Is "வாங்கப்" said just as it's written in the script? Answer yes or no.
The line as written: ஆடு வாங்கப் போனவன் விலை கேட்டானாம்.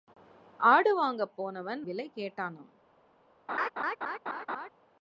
yes